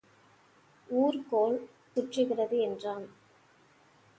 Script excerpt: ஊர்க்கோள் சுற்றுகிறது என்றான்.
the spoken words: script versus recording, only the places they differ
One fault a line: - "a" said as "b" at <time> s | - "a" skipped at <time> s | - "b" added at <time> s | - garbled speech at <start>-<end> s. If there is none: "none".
none